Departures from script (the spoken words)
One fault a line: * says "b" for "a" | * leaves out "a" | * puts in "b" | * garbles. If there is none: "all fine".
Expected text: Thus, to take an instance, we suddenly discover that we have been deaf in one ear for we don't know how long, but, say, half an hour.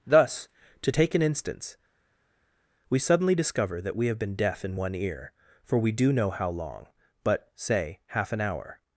* says "do" for "don't"